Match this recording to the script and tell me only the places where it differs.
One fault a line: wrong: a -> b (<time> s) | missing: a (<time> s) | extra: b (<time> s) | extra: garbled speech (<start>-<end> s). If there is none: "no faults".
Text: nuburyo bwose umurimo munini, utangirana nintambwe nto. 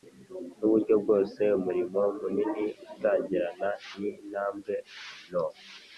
no faults